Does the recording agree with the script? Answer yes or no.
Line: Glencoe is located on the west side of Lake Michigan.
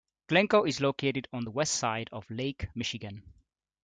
yes